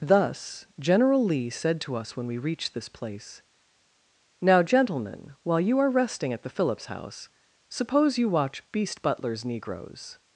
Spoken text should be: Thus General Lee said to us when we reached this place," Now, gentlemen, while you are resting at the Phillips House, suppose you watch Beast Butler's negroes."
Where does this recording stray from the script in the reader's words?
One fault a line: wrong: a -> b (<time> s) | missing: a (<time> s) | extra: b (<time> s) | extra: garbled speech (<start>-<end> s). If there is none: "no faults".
no faults